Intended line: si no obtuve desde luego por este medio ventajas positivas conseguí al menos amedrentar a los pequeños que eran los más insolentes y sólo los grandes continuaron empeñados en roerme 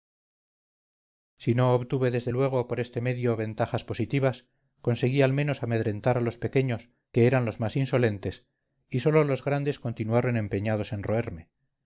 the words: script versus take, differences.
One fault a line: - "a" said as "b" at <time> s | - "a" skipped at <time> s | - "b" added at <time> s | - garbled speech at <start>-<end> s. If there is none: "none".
none